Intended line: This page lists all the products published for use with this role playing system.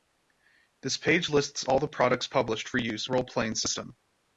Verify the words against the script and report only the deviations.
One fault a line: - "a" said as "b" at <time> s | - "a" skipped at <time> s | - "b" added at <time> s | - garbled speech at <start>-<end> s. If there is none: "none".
- "with this" skipped at 3.1 s